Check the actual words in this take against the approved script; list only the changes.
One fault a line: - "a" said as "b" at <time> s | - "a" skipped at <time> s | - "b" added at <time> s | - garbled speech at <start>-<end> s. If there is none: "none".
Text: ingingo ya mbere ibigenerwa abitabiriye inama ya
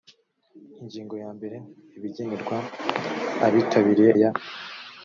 - "inama" skipped at 4.1 s